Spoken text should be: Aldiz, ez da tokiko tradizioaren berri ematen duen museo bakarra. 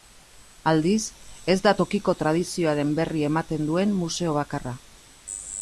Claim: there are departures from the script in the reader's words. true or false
false